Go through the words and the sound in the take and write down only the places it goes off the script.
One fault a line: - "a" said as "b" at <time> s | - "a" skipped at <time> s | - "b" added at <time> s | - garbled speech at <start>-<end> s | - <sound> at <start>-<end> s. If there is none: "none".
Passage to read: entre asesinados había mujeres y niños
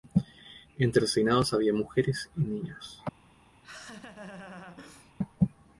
- laugh at 3.6-5.1 s